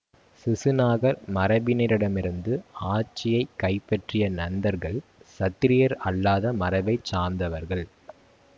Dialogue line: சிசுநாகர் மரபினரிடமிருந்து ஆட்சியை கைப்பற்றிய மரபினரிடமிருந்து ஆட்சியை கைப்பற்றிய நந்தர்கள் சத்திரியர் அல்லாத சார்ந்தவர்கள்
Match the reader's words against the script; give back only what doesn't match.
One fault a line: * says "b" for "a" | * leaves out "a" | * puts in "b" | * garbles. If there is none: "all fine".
* leaves out "மரபினரிடமிருந்து ஆட்சியை கைப்பற்றிய"
* puts in "மரபை"